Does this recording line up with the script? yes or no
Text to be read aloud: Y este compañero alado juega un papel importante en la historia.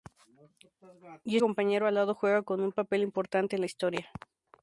no